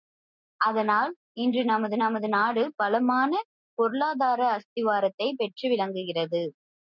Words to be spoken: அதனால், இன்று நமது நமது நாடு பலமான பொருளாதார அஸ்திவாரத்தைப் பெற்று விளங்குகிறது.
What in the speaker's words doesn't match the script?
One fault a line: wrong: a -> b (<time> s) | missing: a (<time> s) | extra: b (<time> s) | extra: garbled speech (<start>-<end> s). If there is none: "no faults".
no faults